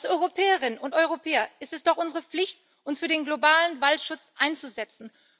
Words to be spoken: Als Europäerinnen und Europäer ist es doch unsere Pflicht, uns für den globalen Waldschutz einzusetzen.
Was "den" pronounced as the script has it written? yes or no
yes